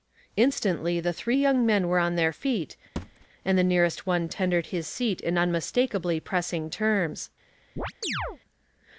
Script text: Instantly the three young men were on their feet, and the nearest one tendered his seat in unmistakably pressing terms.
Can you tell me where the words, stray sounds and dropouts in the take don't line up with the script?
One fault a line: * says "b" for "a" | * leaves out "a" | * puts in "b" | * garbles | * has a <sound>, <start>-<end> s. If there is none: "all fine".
* has a thud, 3.0-3.3 s
* has a chirp, 7.8-8.4 s